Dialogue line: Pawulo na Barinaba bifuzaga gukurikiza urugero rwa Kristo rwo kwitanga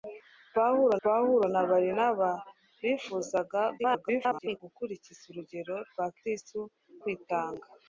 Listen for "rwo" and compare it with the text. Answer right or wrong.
wrong